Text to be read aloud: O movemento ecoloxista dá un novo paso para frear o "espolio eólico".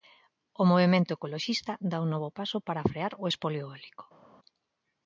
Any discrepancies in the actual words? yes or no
no